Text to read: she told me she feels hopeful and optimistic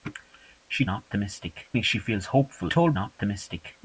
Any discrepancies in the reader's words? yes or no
yes